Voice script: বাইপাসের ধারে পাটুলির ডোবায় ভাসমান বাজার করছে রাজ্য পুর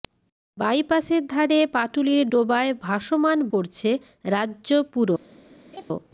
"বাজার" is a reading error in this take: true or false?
true